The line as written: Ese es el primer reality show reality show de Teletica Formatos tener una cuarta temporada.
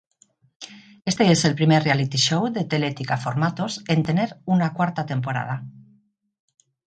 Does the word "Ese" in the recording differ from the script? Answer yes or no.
yes